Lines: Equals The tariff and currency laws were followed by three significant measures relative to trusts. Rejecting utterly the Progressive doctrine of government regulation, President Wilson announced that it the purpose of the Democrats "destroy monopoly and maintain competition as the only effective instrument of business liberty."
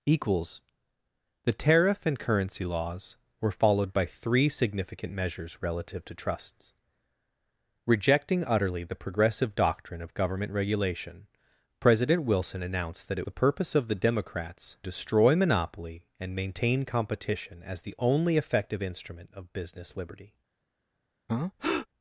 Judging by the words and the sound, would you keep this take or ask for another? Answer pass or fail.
fail